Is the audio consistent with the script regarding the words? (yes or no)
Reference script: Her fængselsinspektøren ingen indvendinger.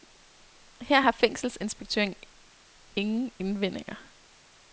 no